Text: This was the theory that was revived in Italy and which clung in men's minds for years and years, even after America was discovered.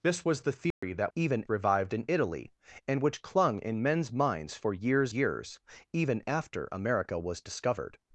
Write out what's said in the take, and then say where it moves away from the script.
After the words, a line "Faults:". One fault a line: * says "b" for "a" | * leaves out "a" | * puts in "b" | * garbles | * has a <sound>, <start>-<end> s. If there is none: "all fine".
This was the theory that even revived in Italy and which clung in men's minds for years years, even after America was discovered.
Faults:
* has a dropout, 0.7-0.8 s
* says "even" for "was"
* leaves out "and"